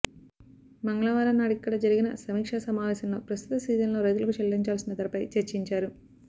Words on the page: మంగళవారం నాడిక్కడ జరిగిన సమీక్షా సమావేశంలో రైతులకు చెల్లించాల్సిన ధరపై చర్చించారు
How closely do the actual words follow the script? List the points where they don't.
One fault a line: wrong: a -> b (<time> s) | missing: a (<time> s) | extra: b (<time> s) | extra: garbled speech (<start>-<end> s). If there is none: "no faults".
extra: ప్రస్తుత సీజన్లో (3.3 s)